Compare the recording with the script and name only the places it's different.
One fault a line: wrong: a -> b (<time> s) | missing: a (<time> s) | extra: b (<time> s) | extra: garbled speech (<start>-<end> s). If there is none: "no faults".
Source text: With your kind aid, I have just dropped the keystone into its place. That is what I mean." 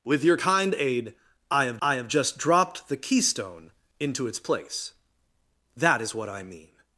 extra: I have (1.8 s)